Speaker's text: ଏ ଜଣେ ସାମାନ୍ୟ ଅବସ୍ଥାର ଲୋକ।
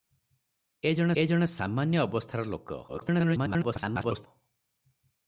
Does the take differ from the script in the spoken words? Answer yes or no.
yes